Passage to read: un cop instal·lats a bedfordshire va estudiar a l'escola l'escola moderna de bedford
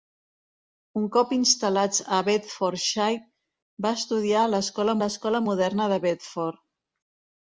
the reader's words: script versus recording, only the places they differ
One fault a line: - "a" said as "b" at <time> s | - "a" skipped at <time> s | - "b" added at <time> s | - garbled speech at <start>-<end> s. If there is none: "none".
none